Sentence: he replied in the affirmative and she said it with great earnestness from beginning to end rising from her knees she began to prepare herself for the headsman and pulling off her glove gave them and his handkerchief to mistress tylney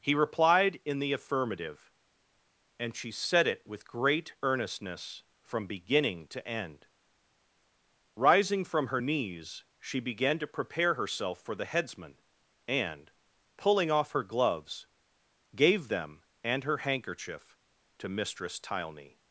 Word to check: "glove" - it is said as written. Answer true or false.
false